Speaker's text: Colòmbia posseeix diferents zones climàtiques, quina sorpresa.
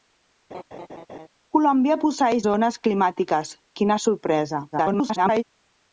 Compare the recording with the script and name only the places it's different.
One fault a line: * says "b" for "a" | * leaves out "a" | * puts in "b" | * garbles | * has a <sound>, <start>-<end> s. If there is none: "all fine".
* has a laugh, 0.5-1.3 s
* leaves out "diferents"
* garbles